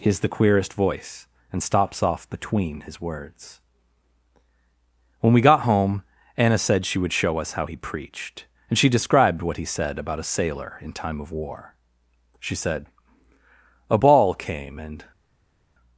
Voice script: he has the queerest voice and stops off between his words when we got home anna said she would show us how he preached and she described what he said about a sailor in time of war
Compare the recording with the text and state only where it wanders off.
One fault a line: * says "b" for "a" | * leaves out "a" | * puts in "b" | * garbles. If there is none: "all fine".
* puts in "she said a ball came and"